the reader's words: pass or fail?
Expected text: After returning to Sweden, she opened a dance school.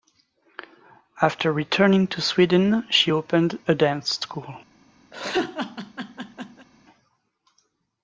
pass